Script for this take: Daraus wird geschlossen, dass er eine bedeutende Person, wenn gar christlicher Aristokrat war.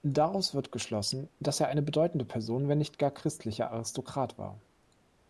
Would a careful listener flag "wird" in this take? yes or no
no